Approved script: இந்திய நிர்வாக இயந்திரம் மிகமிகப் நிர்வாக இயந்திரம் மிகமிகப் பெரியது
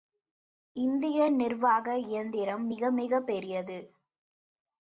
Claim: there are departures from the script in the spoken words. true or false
true